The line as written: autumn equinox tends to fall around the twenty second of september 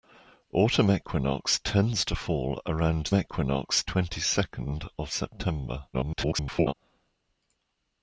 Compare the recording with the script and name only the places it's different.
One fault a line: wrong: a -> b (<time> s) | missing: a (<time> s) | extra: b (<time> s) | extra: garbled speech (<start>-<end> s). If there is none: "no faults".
wrong: the -> equinox (3.1 s)
extra: garbled speech (5.9-6.7 s)